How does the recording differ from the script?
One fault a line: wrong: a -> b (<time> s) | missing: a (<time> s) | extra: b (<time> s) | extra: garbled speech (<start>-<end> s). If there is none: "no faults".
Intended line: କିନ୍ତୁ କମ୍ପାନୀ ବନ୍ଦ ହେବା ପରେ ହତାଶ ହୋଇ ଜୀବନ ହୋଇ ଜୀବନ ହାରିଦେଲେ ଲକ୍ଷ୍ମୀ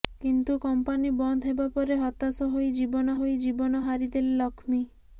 no faults